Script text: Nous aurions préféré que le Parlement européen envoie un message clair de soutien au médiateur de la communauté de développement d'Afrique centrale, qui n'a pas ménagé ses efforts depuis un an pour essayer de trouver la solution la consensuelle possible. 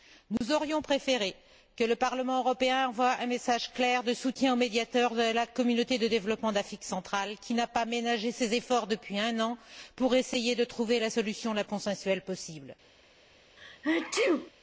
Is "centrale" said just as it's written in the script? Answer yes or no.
yes